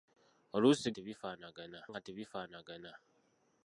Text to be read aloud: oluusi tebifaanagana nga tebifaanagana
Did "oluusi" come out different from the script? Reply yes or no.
no